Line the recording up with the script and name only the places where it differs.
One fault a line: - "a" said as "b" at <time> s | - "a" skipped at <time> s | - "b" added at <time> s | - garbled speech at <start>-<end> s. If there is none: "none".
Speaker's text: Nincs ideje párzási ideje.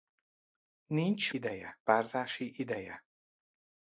none